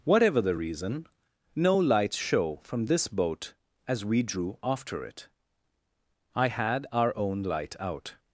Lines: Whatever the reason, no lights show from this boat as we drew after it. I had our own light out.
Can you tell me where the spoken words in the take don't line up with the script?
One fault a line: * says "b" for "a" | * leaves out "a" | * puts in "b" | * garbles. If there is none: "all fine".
all fine